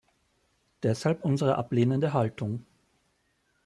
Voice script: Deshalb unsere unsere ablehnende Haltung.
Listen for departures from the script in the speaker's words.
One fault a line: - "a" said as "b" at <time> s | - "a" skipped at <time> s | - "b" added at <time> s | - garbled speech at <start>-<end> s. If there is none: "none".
- "unsere" skipped at 1.6 s